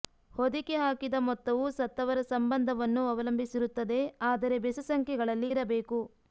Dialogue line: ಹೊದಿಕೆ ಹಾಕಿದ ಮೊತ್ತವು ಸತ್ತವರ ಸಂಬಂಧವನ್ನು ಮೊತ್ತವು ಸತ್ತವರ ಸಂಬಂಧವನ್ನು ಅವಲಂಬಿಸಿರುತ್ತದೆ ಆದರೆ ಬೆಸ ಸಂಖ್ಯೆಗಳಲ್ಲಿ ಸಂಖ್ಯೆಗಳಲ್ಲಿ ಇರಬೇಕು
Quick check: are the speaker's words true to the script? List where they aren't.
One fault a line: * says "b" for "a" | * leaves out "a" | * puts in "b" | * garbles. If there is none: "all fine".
* leaves out "ಮೊತ್ತವು ಸತ್ತವರ ಸಂಬಂಧವನ್ನು"
* leaves out "ಸಂಖ್ಯೆಗಳಲ್ಲಿ"